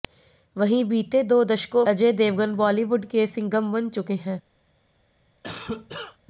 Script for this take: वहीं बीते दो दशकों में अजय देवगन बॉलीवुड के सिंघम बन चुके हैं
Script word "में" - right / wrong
wrong